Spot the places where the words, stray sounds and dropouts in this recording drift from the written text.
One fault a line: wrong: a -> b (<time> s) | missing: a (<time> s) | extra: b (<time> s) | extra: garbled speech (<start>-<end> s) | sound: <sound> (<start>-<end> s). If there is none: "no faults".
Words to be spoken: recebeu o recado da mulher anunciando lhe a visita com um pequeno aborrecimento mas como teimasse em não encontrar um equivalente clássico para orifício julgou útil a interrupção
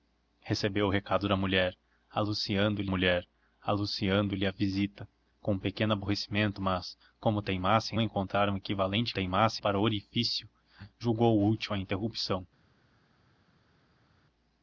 extra: mulher anunciando lhe (2.9 s)
missing: não (8.0 s)
wrong: clássico -> teimasse (9.1 s)